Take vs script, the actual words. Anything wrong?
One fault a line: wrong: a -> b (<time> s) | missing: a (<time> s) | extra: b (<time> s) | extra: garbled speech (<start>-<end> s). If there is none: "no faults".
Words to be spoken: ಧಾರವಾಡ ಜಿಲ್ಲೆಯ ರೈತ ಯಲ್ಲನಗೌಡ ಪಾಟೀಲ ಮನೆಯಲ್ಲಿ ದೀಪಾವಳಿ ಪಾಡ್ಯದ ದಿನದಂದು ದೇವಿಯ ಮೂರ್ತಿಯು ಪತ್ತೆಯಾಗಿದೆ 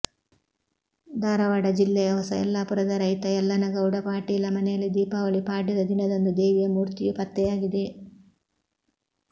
extra: ಹೊಸ ಯಲ್ಲಾಪುರದ (2.1 s)